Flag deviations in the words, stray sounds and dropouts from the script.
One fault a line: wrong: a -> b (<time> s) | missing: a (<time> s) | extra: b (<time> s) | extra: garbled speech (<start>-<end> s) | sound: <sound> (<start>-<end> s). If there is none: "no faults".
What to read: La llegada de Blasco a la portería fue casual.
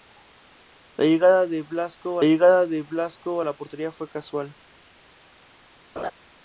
extra: llegada de Blasco (2.2 s)
sound: laugh (6.0-6.1 s)